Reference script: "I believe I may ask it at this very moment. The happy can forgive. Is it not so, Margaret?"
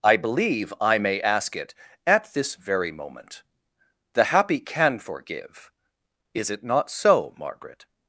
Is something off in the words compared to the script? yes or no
no